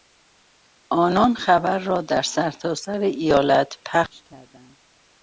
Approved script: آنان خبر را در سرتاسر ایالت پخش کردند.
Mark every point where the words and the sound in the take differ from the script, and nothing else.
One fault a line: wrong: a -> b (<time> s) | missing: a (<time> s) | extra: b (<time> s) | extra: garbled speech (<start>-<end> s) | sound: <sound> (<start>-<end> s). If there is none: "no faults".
no faults